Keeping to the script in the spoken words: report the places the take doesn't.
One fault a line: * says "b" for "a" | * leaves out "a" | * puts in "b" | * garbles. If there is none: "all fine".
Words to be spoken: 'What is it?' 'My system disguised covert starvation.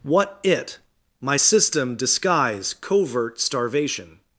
* leaves out "is"
* says "disguise" for "disguised"